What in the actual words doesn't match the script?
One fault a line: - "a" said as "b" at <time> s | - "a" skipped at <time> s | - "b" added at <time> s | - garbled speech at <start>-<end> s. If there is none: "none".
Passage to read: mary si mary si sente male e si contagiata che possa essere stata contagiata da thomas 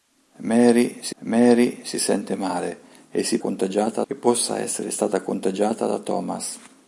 none